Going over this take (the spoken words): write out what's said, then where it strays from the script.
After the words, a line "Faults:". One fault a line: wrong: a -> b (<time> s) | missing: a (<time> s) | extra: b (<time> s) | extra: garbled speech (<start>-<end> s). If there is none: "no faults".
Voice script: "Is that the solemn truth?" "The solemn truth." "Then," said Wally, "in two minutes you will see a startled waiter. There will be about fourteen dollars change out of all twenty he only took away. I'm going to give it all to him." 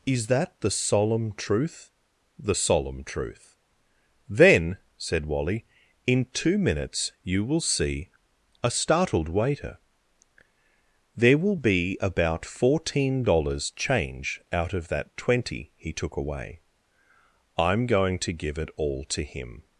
"Is that the solemn truth?" "The solemn truth." "Then," said Wally, "in two minutes you will see a startled waiter. There will be about fourteen dollars change out of that twenty he took away. I'm going to give it all to him."
Faults:
wrong: all -> that (14.9 s)
missing: only (15.9 s)